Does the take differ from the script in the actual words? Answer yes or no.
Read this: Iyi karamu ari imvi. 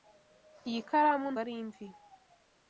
no